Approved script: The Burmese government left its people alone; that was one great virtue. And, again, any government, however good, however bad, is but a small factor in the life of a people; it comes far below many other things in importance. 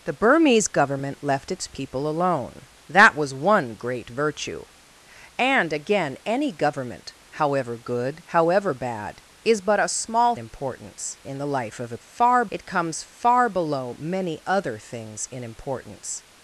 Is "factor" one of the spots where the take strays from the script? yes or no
yes